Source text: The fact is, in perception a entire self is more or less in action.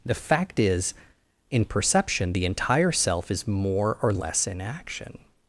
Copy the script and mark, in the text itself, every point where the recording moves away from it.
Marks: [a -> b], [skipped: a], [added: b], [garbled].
The fact is, in perception [a -> the] entire self is more or less in action.